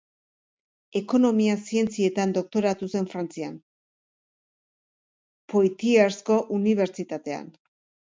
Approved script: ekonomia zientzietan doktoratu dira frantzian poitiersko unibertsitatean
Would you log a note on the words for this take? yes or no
yes